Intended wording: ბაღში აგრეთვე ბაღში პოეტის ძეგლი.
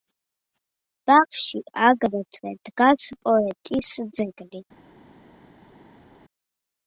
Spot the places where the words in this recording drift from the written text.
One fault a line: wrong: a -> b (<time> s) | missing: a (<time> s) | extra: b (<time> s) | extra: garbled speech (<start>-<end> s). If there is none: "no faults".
wrong: ბაღში -> დგას (2.7 s)